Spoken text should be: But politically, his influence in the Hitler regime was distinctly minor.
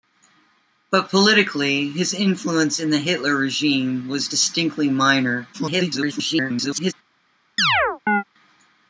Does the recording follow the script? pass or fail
fail